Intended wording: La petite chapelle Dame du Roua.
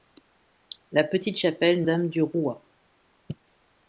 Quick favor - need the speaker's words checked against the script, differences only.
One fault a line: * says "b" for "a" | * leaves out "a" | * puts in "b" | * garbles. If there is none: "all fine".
all fine